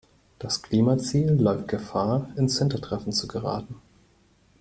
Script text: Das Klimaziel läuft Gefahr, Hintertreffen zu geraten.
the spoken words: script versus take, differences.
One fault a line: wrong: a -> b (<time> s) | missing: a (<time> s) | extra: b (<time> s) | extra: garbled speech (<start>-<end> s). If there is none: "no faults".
extra: ins (2.4 s)